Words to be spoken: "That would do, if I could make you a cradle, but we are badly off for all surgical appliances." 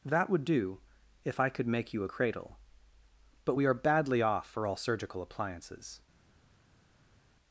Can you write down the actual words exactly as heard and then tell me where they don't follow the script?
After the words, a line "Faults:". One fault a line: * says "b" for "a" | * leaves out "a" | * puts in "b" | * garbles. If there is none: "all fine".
"That would do, if I could make you a cradle, but we are badly off for all surgical appliances."
Faults:
all fine